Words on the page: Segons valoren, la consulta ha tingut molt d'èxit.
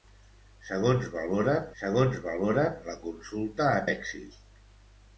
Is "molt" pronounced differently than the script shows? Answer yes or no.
yes